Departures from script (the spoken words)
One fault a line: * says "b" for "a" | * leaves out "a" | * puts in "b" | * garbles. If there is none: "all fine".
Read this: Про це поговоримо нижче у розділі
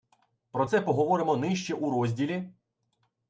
all fine